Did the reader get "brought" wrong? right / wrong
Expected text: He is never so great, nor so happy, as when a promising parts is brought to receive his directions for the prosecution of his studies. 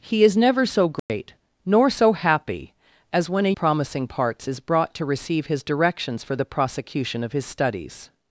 right